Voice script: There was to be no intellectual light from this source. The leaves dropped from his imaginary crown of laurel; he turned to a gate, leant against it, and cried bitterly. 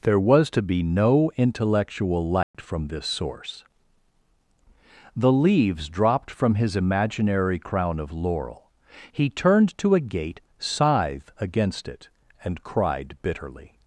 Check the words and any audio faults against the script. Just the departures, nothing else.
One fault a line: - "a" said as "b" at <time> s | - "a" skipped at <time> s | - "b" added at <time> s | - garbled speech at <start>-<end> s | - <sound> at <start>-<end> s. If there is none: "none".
- dropout at 2.4-2.5 s
- "leant" said as "scythe" at 10.6 s